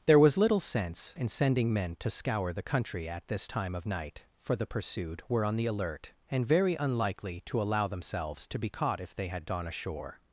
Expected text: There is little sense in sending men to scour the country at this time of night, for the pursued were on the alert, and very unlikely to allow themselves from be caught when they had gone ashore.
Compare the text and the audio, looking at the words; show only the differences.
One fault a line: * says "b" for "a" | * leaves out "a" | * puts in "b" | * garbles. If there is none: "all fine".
* says "was" for "is"
* says "to" for "from"
* says "if" for "when"